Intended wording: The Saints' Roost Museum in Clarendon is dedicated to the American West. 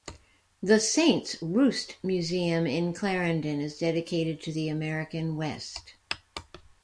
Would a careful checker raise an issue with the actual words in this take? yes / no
no